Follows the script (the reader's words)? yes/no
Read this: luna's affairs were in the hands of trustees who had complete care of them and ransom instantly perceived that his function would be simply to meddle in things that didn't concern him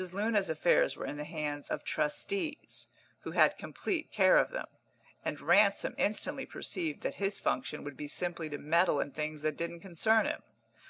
yes